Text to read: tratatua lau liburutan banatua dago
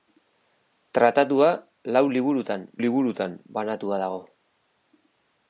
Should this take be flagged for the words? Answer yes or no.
yes